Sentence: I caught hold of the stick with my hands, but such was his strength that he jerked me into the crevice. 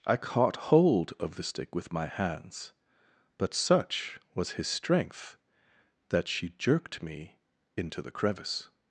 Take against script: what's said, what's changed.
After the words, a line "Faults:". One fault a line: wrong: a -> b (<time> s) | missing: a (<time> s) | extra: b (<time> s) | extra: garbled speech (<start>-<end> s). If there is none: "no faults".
I caught hold of the stick with my hands, but such was his strength that she jerked me into the crevice.
Faults:
wrong: he -> she (6.3 s)